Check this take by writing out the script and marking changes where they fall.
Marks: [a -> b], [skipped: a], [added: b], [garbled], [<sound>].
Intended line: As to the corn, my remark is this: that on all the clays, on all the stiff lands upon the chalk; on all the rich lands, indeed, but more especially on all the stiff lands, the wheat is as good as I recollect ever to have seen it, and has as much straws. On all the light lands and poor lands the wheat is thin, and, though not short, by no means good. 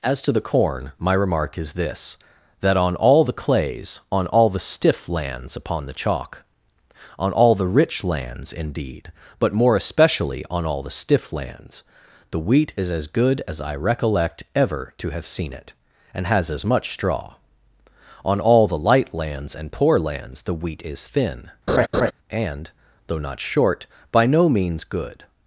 As to the corn, my remark is this: that on all the clays, on all the stiff lands upon the chalk; on all the rich lands, indeed, but more especially on all the stiff lands, the wheat is as good as I recollect ever to have seen it, and has as much [straws. -> straw] On all the light lands and poor lands the wheat is thin, [laugh] and, though not short, by no means good.